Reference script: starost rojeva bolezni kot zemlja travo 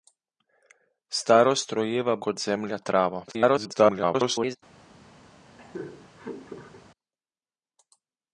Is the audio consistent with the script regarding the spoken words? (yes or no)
no